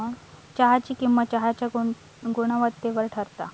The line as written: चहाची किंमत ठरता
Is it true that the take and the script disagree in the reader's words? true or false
true